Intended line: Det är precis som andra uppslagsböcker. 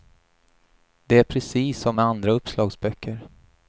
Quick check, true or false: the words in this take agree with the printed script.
false